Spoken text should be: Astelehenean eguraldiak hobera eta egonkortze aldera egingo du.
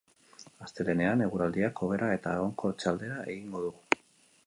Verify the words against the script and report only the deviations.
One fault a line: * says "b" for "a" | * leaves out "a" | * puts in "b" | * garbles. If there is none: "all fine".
all fine